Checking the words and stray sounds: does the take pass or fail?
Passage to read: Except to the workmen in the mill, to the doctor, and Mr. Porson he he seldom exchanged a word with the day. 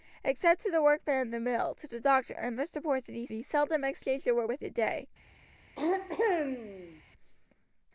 fail